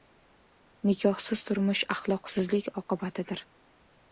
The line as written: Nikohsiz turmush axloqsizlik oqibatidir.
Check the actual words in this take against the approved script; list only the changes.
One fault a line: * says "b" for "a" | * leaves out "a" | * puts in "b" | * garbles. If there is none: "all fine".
all fine